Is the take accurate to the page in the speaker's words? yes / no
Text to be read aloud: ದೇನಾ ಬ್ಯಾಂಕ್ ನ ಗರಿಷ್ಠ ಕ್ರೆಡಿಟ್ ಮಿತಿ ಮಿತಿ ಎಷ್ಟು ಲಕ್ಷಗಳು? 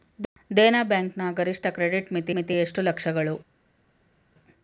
yes